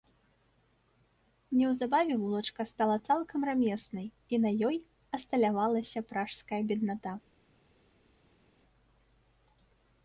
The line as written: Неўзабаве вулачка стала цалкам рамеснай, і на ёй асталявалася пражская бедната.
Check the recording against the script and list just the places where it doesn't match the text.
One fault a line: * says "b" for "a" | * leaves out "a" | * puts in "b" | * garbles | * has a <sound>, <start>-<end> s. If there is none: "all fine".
all fine